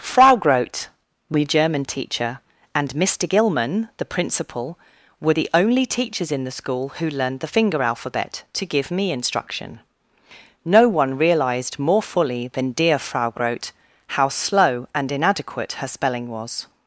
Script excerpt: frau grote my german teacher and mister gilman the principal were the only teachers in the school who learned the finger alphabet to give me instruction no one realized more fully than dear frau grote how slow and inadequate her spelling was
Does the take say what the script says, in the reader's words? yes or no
yes